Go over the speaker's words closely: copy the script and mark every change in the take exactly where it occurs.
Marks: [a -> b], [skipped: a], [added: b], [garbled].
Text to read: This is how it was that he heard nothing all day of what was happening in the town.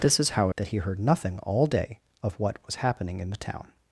This is how [skipped: it was] that he heard nothing all day of what was happening in the town.